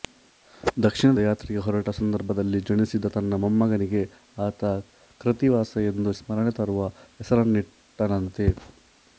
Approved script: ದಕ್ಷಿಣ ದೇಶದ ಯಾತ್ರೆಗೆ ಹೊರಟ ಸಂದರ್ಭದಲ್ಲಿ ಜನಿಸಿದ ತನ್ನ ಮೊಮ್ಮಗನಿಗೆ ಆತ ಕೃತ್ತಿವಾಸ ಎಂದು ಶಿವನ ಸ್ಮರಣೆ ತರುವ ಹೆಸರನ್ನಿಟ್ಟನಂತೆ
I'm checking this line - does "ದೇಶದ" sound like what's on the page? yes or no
no